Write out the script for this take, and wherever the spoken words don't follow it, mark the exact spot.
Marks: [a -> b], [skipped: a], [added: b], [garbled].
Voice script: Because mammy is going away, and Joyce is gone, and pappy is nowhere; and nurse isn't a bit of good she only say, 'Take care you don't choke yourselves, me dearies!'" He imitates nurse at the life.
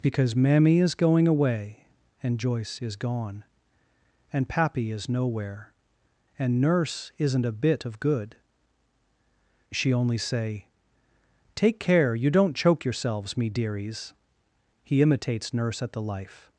Because mammy is going away, and Joyce is gone, and pappy is nowhere; and nurse isn't a bit of good she only say, 'Take care you don't choke yourselves, me dearies!'" He imitates nurse at the life.